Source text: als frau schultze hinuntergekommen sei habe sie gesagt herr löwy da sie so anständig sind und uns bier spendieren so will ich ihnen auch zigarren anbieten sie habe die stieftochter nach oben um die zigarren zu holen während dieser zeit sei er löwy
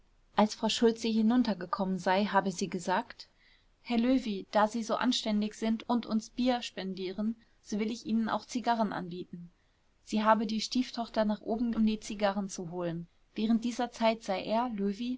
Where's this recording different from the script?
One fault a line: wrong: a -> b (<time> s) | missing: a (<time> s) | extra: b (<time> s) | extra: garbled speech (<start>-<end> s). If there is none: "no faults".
no faults